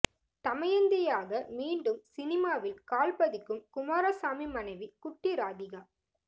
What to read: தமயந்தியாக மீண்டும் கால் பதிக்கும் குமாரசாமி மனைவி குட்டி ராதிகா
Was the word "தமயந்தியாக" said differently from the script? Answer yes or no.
no